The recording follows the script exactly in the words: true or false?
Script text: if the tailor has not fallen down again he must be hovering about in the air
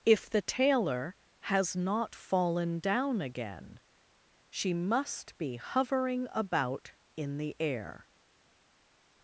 false